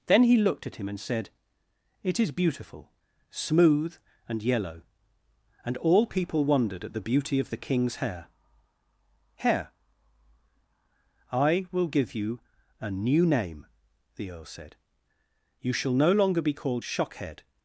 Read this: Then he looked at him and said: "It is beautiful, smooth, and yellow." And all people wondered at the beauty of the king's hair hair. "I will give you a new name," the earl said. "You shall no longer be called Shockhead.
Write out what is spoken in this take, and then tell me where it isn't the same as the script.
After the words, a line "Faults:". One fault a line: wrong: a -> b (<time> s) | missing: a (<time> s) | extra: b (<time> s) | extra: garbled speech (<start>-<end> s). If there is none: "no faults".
Then he looked at him and said: "It is beautiful, smooth, and yellow." And all people wondered at the beauty of the king's hair hair. "I will give you a new name," the earl said. "You shall no longer be called Shockhead.
Faults:
no faults